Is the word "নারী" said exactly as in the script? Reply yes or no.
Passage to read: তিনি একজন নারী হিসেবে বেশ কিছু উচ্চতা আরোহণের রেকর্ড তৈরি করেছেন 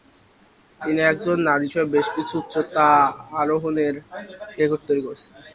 yes